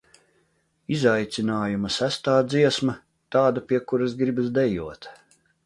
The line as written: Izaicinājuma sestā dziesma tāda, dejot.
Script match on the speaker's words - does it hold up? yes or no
no